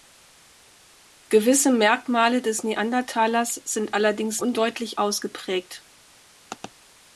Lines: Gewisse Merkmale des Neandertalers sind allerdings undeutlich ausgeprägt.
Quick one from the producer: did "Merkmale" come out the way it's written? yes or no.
yes